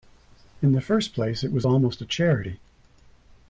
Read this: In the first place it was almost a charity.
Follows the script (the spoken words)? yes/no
yes